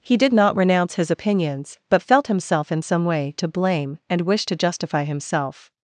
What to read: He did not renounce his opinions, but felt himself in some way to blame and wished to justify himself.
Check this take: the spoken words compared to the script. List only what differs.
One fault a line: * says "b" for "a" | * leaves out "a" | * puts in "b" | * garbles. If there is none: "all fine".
all fine